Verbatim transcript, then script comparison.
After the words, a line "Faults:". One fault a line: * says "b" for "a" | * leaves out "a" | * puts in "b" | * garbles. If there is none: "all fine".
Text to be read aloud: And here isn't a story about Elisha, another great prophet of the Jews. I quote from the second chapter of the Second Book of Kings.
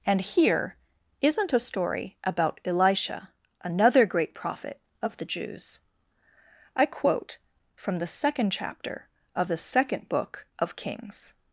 And here isn't a story about Elisha, another great prophet of the Jews. I quote from the second chapter of the Second Book of Kings.
Faults:
all fine